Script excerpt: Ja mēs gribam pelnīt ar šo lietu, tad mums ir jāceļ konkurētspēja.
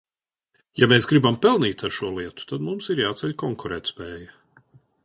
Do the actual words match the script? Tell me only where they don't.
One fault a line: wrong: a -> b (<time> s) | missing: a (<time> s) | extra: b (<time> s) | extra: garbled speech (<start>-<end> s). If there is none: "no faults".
no faults